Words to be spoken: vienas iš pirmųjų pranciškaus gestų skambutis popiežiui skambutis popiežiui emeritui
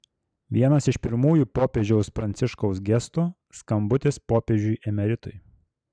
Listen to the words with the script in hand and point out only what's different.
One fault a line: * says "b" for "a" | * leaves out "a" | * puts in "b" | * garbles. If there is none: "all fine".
* puts in "popiežiaus"
* leaves out "skambutis popiežiui"